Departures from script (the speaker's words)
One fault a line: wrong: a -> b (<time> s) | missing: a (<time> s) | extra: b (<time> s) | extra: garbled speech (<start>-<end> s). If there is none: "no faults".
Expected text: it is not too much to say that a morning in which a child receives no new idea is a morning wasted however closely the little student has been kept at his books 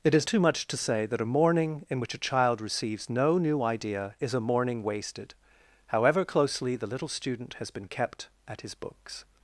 missing: not (0.3 s)